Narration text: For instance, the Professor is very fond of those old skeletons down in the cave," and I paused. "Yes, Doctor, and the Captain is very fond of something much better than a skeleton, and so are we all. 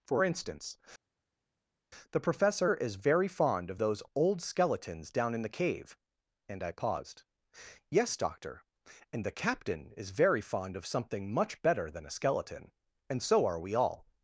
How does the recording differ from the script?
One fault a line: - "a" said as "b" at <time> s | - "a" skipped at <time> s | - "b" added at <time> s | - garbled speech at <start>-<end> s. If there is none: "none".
none